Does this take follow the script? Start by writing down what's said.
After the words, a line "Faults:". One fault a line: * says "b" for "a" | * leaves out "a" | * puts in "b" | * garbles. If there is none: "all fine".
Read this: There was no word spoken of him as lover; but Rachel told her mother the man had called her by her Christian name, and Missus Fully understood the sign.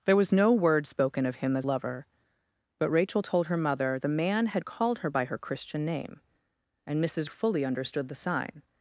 There was no word spoken of him as lover; but Rachel told her mother the man had called her by her Christian name, and Missus Fully understood the sign.
Faults:
all fine